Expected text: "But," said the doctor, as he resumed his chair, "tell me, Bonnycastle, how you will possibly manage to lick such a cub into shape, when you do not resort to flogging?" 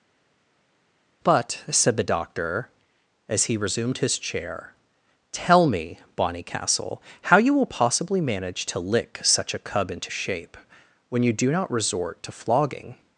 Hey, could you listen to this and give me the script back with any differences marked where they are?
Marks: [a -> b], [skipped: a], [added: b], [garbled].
"But," said the doctor, as he resumed his chair, "tell me, Bonnycastle, how you will possibly manage to lick such a cub into shape, when you do not resort to flogging?"